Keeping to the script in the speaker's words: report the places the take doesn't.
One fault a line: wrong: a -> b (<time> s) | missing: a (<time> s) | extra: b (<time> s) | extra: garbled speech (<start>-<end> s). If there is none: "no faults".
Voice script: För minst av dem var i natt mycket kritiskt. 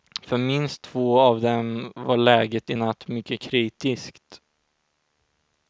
extra: två (0.8 s)
extra: läget (2.2 s)